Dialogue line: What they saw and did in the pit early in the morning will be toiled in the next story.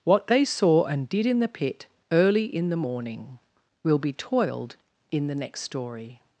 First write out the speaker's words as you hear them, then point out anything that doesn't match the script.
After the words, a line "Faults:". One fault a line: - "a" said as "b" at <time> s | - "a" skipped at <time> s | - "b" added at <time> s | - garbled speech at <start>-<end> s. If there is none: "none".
What they saw and did in the pit early in the morning will be toiled in the next story.
Faults:
none